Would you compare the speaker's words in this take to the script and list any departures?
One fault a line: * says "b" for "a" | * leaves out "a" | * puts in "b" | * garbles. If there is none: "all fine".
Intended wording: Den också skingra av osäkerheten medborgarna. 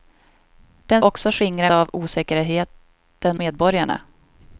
all fine